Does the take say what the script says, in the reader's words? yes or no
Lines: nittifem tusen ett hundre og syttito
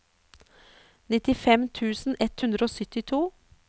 yes